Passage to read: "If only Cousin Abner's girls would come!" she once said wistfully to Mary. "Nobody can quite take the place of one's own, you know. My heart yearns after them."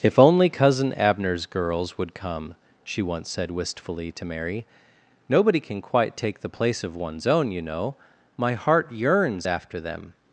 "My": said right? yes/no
yes